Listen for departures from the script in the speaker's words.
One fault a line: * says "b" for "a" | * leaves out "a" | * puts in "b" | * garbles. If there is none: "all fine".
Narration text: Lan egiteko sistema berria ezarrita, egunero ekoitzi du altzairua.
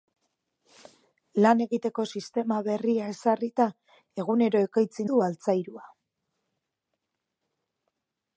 all fine